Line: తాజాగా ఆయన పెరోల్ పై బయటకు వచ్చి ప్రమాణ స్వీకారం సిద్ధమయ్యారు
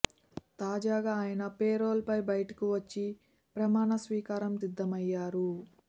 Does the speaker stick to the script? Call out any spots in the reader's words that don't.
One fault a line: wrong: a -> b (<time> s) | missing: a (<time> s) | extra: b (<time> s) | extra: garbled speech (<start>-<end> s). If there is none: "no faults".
no faults